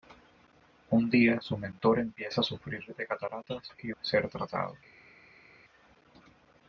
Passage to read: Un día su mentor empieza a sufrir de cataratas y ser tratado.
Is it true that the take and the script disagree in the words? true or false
false